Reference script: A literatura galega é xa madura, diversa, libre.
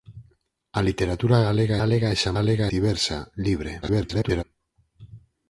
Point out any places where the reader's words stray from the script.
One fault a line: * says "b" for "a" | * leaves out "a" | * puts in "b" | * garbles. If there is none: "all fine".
* puts in "galega"
* says "galega" for "madura"
* garbles